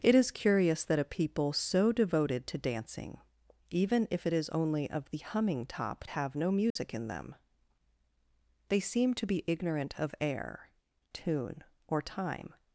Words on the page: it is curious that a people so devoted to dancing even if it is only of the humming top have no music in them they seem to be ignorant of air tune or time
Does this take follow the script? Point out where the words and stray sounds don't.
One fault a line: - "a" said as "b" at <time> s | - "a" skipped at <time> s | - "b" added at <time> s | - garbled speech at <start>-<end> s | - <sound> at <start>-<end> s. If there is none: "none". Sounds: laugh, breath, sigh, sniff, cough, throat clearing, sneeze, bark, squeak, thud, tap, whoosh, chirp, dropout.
- dropout at 6.7-6.8 s